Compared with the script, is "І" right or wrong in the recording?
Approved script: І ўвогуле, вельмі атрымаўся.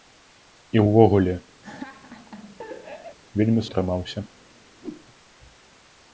right